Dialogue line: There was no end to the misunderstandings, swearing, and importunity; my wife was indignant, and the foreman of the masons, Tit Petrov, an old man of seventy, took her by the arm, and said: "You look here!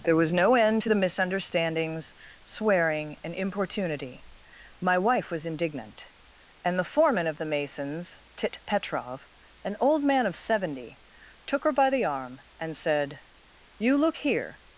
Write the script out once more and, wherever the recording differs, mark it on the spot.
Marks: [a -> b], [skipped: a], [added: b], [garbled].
There was no end to the misunderstandings, swearing, and importunity; my wife was indignant, and the foreman of the masons, Tit Petrov, an old man of seventy, took her by the arm, and said: "You look here!